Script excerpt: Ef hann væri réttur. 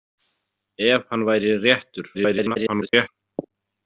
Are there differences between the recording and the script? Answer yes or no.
yes